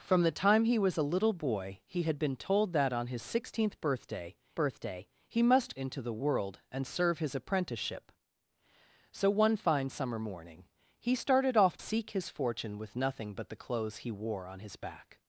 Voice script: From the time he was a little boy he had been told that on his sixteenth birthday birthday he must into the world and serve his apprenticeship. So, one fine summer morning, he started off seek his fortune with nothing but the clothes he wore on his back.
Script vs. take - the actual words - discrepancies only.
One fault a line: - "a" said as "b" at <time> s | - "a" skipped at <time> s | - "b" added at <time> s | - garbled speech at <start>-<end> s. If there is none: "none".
none